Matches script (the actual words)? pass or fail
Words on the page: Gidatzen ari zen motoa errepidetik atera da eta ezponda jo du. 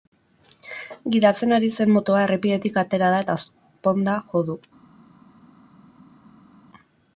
pass